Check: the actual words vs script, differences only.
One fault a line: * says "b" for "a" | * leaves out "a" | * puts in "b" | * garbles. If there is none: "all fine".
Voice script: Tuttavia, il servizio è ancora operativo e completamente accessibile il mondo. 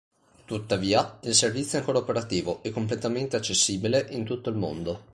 * puts in "in tutto"